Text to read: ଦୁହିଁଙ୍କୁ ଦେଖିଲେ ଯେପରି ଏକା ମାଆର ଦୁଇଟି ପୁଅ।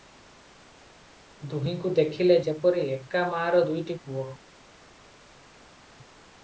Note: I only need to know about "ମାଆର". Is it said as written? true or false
true